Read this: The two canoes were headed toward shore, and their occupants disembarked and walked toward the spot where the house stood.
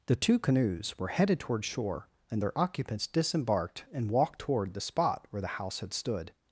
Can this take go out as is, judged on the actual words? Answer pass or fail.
fail